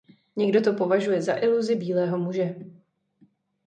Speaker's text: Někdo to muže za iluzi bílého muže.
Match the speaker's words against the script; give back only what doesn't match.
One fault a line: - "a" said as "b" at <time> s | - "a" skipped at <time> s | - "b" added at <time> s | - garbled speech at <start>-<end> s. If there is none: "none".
- "muže" said as "považuje" at 0.7 s